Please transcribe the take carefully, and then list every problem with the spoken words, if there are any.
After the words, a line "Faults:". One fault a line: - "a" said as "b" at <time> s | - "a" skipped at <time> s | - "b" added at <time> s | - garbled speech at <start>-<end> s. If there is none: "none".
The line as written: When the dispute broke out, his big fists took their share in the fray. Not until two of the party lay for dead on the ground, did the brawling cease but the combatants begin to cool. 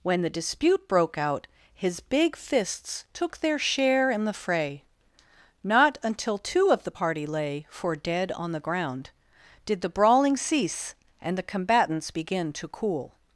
When the dispute broke out, his big fists took their share in the fray. Not until two of the party lay for dead on the ground, did the brawling cease and the combatants begin to cool.
Faults:
- "but" said as "and" at 11.2 s